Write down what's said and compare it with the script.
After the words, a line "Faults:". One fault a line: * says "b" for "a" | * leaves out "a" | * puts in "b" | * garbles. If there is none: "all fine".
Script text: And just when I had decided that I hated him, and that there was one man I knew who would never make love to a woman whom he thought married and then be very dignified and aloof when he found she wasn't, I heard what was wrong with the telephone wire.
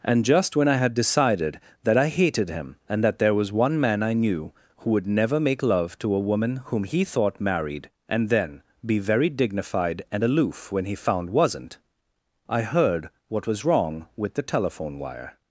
And just when I had decided that I hated him, and that there was one man I knew who would never make love to a woman whom he thought married and then be very dignified and aloof when he found wasn't, I heard what was wrong with the telephone wire.
Faults:
* leaves out "she"